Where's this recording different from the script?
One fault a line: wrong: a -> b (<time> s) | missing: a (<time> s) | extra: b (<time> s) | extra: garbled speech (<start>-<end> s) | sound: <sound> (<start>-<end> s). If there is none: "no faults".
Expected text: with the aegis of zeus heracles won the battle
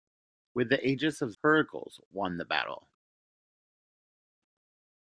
missing: zeus (1.3 s)